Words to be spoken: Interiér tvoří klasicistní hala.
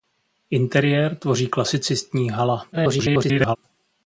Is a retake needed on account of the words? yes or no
yes